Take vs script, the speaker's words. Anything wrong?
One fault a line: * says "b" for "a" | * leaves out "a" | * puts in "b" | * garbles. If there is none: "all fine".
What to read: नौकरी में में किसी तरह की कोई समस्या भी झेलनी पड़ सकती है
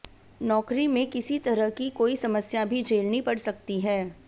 * leaves out "में"